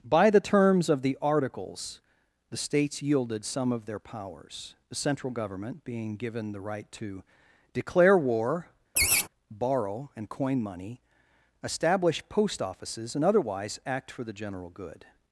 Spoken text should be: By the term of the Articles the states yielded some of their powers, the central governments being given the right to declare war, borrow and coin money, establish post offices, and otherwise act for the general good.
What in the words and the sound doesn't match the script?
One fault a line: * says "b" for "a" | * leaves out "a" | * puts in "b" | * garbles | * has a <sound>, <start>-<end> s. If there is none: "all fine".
* says "terms" for "term"
* says "government" for "governments"
* has a laugh, 9.0-9.3 s